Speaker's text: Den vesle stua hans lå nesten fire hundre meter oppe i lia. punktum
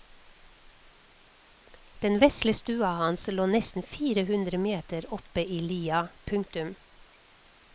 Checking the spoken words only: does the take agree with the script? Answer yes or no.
yes